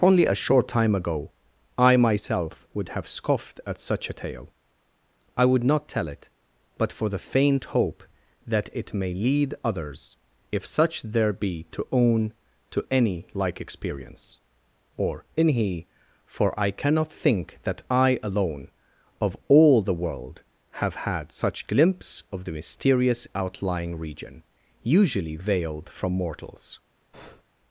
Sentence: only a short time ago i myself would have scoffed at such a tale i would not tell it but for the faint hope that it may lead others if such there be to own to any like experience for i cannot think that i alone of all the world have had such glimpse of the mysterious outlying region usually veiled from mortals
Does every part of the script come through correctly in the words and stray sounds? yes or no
no